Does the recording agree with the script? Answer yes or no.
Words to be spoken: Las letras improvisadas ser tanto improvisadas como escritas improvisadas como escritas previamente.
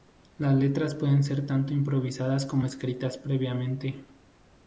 no